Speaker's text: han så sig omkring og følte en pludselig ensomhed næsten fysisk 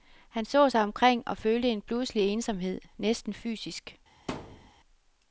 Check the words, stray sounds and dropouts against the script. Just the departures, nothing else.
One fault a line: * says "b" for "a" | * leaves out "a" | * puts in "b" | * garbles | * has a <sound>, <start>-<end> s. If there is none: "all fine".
* has a thud, 4.3-4.7 s